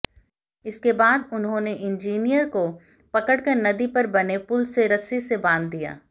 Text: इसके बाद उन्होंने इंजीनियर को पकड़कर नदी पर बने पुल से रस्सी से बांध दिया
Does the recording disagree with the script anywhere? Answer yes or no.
no